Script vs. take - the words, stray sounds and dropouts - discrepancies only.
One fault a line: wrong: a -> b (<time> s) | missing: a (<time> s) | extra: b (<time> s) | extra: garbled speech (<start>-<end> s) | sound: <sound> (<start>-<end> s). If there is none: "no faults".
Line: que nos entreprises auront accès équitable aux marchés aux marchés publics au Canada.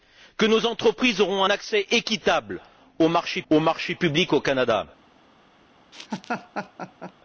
sound: laugh (5.9-7.1 s)